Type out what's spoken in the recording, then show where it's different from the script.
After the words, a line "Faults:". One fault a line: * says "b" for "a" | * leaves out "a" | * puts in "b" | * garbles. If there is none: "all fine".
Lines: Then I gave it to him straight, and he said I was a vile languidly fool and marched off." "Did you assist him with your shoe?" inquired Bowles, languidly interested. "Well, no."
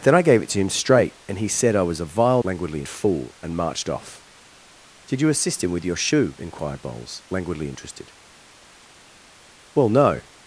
Then I gave it to him straight, and he said I was a vile languidly fool and marched off." "Did you assist him with your shoe?" inquired Bowles, languidly interested. "Well, no."
Faults:
all fine